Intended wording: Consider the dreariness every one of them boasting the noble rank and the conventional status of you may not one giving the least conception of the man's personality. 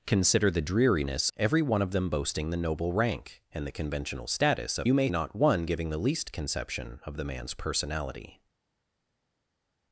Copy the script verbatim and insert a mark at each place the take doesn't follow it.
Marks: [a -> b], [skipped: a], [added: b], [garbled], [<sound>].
Consider the dreariness every one of them boasting the noble rank and the conventional status of you may not one giving the least conception of the man's personality.